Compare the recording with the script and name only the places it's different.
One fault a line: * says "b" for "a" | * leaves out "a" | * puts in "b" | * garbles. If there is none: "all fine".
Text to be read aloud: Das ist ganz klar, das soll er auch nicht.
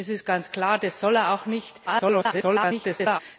* garbles